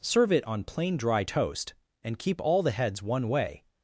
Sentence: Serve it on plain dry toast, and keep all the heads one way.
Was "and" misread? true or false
false